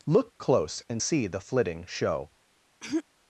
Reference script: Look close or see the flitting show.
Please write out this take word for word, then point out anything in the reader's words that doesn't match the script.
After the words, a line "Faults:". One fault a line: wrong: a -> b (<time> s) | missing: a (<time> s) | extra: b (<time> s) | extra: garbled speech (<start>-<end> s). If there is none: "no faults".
Look close and see the flitting show.
Faults:
wrong: or -> and (0.9 s)